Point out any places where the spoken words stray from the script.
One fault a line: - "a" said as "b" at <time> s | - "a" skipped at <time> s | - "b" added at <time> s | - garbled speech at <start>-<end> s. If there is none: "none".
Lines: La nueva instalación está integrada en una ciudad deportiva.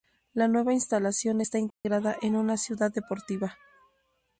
none